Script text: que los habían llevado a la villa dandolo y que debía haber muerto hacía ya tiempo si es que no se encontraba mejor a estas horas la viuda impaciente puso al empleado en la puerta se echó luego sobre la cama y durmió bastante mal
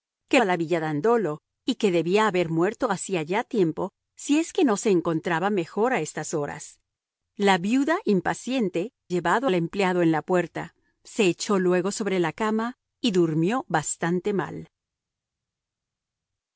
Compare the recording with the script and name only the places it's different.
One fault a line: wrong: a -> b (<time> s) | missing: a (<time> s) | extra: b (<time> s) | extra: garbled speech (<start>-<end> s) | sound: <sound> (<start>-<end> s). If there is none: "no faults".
missing: los habían llevado (0.4 s)
wrong: puso -> llevado (9.1 s)